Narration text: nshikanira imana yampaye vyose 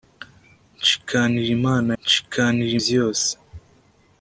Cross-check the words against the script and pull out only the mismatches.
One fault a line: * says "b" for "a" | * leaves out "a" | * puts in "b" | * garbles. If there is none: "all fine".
* says "nshikanira" for "yampaye"